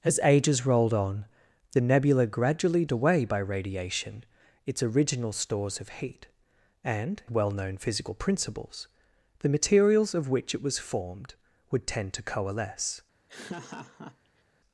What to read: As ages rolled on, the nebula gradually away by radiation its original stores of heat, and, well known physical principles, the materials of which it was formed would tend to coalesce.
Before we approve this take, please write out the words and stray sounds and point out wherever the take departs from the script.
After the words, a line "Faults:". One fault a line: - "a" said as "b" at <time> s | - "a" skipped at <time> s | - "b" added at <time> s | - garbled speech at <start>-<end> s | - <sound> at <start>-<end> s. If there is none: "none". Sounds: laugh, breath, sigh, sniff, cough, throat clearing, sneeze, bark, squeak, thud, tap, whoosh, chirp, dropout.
As ages rolled on, the nebula gradually away by radiation its original stores of heat, and, well known physical principles, the materials of which it was formed would tend to coalesce.
Faults:
- laugh at 13.3-14.4 s